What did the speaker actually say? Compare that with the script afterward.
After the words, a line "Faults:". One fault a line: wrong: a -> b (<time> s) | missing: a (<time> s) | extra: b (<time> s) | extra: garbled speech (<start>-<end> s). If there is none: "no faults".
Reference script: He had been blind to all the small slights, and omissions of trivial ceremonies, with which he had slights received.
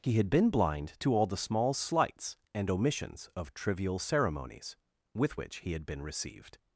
He had been blind to all the small slights, and omissions of trivial ceremonies, with which he had been received.
Faults:
wrong: slights -> been (5.9 s)